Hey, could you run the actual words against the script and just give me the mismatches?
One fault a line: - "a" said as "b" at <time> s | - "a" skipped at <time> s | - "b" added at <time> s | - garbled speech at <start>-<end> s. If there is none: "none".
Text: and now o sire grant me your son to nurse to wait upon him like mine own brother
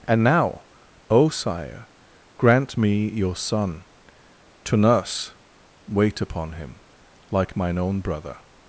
- "to" skipped at 5.3 s